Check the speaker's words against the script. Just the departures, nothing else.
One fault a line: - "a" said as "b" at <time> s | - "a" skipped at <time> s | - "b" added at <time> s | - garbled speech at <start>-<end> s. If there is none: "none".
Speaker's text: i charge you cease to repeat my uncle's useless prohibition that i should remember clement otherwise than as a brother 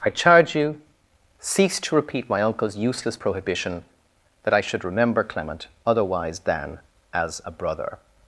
none